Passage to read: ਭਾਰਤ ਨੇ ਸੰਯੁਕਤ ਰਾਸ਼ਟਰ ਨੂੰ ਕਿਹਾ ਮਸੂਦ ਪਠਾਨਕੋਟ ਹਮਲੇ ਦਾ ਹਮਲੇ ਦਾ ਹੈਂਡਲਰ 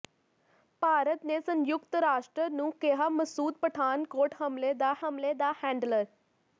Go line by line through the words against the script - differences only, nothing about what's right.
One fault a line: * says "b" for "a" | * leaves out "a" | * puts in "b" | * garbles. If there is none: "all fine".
all fine